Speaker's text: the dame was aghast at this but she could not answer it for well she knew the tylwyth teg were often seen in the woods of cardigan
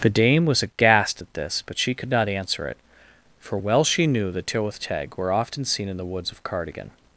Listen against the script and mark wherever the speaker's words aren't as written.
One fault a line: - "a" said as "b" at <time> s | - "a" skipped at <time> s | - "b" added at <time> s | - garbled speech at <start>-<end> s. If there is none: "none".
none